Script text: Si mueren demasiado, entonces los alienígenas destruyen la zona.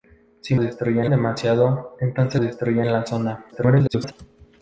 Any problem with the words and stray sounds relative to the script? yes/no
yes